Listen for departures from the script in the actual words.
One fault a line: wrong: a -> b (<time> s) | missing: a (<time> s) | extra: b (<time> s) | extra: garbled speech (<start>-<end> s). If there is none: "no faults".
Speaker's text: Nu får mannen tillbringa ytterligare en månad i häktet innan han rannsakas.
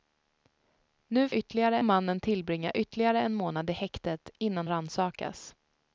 wrong: får -> ytterligare (1.3 s)
missing: han (4.7 s)